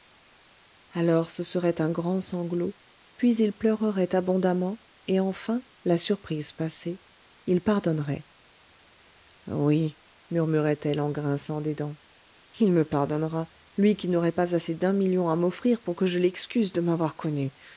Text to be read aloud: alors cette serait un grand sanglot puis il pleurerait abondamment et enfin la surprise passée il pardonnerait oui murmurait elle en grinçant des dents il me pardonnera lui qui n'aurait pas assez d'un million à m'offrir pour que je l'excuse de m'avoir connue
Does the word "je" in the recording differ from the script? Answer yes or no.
no